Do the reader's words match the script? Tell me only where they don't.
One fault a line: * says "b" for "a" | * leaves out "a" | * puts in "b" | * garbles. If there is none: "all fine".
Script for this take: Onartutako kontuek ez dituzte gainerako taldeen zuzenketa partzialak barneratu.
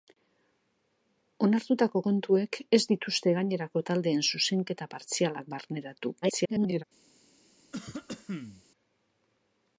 * garbles